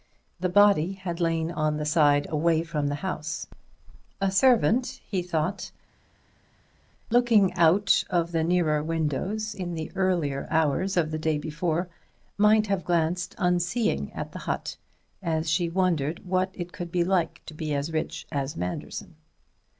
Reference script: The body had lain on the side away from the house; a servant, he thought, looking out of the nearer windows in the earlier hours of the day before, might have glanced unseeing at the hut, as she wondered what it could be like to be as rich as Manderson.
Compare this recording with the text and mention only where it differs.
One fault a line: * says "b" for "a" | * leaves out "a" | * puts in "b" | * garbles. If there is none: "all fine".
all fine